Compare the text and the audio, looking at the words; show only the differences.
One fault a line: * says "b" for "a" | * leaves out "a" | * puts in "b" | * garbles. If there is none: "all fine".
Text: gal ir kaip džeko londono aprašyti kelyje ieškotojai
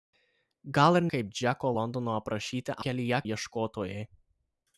all fine